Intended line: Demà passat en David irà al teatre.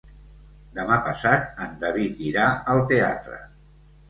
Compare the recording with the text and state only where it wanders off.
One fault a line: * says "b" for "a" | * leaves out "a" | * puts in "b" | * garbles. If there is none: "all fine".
all fine